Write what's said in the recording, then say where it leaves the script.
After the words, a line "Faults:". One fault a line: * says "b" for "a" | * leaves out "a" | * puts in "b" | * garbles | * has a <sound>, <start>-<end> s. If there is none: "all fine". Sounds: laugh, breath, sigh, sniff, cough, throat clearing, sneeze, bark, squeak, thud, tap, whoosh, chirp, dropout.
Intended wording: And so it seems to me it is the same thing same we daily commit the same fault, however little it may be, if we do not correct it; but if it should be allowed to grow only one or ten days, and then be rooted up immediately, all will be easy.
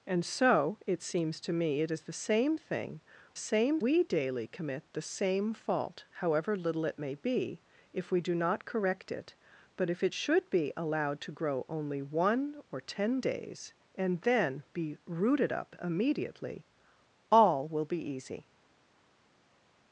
And so it seems to me it is the same thing same we daily commit the same fault, however little it may be, if we do not correct it; but if it should be allowed to grow only one or ten days, and then be rooted up immediately, all will be easy.
Faults:
all fine